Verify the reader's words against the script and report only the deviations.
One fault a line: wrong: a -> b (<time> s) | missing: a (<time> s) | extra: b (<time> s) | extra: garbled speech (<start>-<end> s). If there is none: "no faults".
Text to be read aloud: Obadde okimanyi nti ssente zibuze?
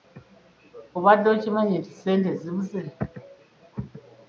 no faults